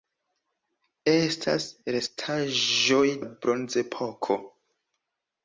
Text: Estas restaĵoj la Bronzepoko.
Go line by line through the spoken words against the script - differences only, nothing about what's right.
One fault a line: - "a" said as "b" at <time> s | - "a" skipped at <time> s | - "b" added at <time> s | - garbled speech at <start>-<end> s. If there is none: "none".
none